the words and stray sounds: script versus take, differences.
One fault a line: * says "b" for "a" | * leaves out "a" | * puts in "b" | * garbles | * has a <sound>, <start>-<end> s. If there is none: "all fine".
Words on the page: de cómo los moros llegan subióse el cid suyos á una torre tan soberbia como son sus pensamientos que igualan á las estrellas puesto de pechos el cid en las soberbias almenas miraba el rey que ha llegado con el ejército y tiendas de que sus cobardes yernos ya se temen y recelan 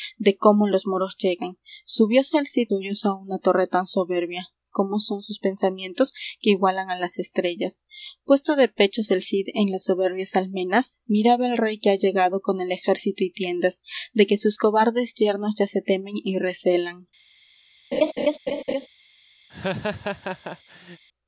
* has a laugh, 17.9-18.9 s
* has a laugh, 19.5-21.0 s